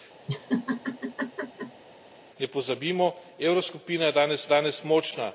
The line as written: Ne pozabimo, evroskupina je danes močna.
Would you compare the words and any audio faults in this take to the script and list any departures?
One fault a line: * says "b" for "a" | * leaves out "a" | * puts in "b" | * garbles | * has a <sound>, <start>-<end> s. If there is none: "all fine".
* has a laugh, 0.3-1.8 s
* puts in "danes"